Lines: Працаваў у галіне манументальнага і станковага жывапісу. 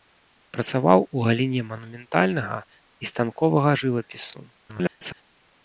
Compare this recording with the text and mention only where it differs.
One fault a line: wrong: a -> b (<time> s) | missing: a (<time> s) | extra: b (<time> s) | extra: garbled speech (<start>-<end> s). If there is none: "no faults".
extra: garbled speech (4.6-5.2 s)